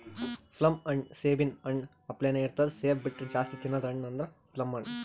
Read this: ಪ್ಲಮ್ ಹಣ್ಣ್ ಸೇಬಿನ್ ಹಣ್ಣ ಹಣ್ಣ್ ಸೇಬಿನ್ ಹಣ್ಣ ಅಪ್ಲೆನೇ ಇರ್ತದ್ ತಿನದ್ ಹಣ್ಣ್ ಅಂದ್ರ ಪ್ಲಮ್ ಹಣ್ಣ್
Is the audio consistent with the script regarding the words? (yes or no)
no